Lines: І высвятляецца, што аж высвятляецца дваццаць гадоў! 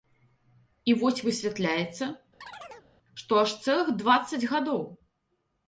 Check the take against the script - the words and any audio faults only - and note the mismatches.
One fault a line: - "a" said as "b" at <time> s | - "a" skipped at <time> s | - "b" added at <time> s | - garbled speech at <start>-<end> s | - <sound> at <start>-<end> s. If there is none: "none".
- "вось" added at 1.0 s
- chirp at 2.4-2.9 s
- "высвятляецца" said as "цэлых" at 3.6 s